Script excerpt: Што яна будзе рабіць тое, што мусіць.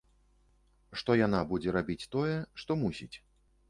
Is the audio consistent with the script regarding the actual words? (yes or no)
yes